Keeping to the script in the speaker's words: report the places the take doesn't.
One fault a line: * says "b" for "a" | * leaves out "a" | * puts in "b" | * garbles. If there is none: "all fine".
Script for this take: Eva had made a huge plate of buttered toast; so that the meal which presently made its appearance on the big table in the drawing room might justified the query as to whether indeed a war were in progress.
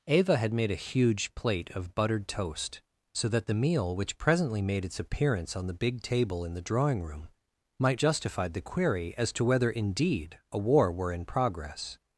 all fine